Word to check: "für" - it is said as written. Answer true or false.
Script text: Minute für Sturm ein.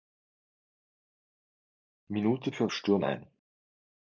true